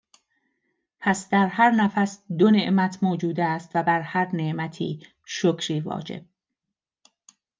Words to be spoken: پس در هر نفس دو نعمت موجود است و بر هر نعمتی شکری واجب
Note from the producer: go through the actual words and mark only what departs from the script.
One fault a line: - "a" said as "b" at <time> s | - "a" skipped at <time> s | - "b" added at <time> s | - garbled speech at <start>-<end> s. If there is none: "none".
none